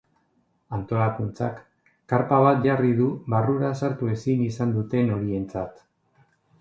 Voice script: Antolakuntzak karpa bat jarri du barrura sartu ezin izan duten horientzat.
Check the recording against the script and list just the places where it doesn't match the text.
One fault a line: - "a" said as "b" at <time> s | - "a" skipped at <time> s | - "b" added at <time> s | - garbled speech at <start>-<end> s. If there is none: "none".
none